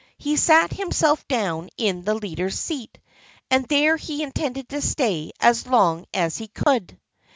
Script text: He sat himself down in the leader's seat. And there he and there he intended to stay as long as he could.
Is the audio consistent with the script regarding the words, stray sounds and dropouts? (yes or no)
no